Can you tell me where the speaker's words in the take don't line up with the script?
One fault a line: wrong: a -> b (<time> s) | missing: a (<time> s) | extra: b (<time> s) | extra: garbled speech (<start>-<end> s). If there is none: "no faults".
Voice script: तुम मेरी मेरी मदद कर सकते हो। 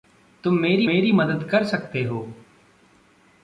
no faults